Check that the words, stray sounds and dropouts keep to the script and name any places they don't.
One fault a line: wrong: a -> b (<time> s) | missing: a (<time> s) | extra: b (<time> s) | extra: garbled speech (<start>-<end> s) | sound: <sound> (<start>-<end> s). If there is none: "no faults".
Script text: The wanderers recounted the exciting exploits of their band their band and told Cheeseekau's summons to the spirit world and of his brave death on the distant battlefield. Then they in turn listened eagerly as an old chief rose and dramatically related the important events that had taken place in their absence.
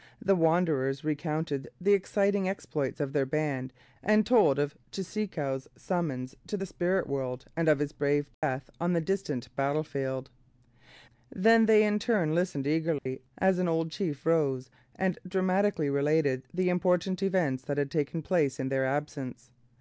missing: their band (3.7 s)
extra: of (4.6 s)
sound: dropout (8.3-8.4 s)
sound: dropout (13.0-13.1 s)